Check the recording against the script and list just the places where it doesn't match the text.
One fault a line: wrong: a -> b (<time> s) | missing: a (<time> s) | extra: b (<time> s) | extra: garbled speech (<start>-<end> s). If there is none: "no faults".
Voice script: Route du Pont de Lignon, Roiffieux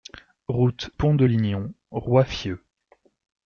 missing: du (0.9 s)